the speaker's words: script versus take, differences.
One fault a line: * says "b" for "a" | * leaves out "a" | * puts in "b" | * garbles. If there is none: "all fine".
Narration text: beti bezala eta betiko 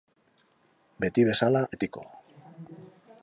* leaves out "eta"